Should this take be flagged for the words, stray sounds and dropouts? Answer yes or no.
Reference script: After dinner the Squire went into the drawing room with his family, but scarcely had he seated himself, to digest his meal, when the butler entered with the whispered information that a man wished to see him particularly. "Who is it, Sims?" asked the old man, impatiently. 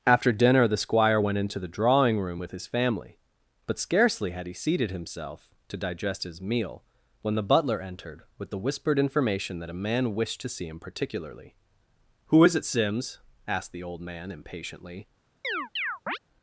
yes